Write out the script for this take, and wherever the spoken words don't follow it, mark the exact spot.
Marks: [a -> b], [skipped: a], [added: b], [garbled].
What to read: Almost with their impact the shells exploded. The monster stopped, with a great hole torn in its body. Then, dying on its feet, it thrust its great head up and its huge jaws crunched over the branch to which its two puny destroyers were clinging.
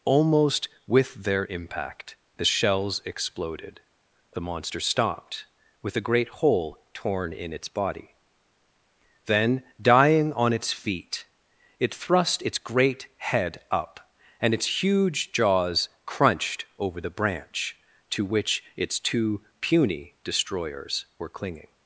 Almost with their impact the shells exploded. The monster stopped, with a great hole torn in its body. Then, dying on its feet, it thrust its great head up and its huge jaws crunched over the branch to which its two puny destroyers were clinging.